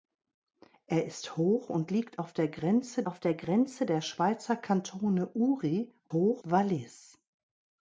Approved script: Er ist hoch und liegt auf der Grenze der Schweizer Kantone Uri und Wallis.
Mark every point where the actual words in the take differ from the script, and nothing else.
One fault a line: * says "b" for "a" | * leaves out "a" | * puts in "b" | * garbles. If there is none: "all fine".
* puts in "auf"
* puts in "Grenze der"
* says "hoch" for "und"